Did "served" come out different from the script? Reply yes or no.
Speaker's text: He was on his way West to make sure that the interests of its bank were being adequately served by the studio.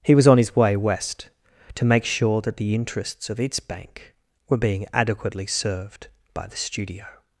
no